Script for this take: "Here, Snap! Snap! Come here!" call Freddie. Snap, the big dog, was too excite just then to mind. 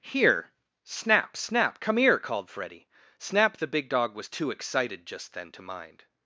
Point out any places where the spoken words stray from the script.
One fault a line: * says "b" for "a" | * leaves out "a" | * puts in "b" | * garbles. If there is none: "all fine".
* says "called" for "call"
* says "excited" for "excite"